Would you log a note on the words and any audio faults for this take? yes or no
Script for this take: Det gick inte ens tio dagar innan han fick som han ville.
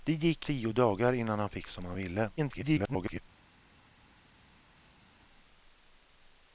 yes